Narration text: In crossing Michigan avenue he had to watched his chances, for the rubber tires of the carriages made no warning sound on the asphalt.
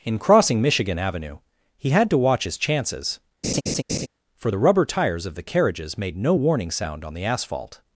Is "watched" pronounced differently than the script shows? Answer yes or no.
yes